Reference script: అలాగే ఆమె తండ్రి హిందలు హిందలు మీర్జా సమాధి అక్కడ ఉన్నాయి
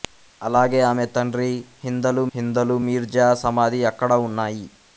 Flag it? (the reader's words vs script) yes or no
no